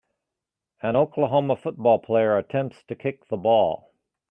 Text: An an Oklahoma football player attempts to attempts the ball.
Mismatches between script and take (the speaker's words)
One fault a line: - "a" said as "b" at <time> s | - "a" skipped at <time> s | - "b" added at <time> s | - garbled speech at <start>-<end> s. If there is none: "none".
- "an" skipped at 1.0 s
- "attempts" said as "kick" at 2.9 s